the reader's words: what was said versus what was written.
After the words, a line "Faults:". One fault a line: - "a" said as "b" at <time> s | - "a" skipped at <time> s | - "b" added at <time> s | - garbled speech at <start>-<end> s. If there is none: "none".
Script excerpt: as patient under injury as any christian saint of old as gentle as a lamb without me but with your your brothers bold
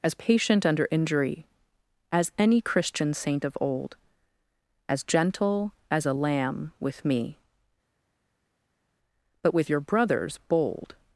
as patient under injury as any christian saint of old as gentle as a lamb with me but with your brothers bold
Faults:
- "without" said as "with" at 6.8 s
- "your" skipped at 9.8 s